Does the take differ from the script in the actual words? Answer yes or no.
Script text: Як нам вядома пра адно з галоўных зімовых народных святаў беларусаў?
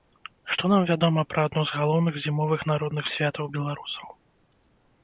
yes